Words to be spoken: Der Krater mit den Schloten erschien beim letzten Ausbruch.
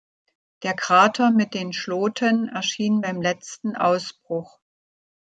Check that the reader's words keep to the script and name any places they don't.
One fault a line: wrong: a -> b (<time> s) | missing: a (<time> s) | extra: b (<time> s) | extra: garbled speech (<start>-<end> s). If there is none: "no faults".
no faults